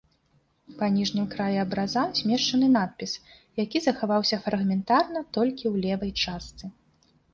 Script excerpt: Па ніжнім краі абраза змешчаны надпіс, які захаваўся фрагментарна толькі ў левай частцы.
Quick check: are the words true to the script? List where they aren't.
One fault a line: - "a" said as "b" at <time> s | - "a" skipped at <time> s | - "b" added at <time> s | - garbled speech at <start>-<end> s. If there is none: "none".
none